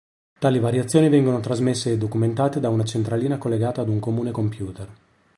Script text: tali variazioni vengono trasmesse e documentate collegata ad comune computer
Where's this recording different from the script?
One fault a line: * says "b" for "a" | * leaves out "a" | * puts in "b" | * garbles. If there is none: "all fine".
* puts in "da una centralina"
* puts in "un"